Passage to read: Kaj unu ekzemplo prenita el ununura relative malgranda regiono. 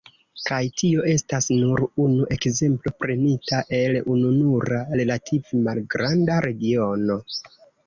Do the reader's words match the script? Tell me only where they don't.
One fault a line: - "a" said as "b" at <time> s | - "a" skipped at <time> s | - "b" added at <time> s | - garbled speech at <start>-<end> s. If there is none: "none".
- "tio estas nur" added at 0.8 s